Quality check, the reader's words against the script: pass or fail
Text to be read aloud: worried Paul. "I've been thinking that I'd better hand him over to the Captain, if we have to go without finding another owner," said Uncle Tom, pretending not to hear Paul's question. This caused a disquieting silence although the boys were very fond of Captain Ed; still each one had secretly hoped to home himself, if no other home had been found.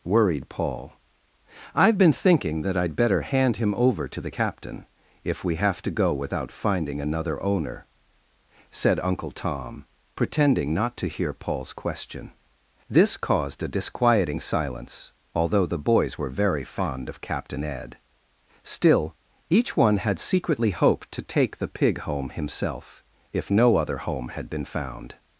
fail